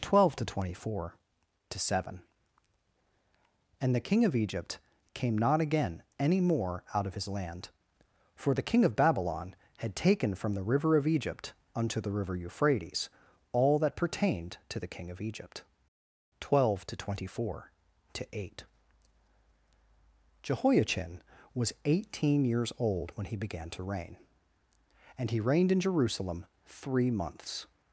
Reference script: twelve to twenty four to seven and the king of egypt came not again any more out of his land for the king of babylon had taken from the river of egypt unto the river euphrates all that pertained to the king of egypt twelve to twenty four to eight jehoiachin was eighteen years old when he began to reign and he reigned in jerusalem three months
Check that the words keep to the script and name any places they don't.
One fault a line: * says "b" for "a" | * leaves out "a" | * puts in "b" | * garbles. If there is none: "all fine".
all fine